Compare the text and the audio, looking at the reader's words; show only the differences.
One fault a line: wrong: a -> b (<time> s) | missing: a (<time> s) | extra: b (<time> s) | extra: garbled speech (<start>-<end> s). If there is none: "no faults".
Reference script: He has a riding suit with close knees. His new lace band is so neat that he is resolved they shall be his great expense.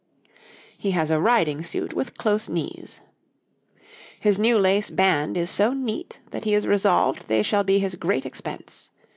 no faults